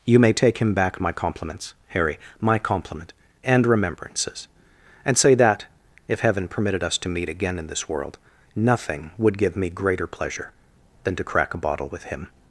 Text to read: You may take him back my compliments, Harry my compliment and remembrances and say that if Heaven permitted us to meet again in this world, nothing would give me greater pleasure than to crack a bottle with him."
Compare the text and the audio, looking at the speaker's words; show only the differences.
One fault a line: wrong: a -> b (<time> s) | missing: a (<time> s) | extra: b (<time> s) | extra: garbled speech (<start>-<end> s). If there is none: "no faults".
no faults